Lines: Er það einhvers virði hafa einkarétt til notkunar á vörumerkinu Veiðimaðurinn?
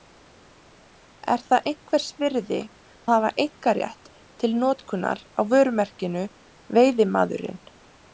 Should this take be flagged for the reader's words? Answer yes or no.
no